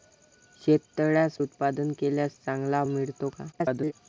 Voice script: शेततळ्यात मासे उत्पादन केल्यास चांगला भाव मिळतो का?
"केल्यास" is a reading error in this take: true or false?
false